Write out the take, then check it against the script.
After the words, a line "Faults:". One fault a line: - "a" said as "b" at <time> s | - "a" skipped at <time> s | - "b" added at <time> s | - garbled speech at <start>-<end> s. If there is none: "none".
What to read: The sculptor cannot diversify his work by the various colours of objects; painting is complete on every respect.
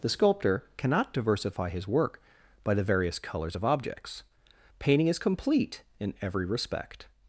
The sculptor cannot diversify his work by the various colours of objects; painting is complete in every respect.
Faults:
- "on" said as "in" at 6.0 s